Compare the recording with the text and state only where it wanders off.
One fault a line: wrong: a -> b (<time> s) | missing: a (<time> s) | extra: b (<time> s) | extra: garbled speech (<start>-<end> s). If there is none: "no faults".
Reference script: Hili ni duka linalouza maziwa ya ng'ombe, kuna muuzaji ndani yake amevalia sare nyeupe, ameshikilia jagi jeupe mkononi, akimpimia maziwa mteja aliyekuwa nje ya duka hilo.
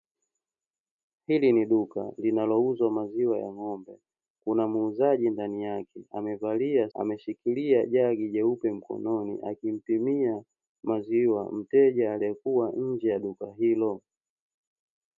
missing: sare nyeupe (6.9 s)